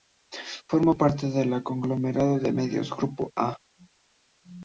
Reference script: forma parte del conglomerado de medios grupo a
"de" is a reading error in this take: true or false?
false